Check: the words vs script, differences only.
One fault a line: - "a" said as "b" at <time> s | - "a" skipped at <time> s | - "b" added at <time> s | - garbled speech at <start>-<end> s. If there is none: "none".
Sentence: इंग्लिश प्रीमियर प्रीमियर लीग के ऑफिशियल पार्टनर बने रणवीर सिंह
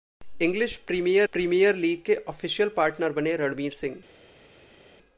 none